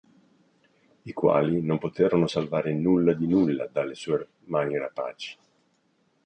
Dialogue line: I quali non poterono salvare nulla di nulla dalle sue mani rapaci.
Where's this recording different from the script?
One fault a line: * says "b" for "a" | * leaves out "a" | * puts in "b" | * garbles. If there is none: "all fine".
all fine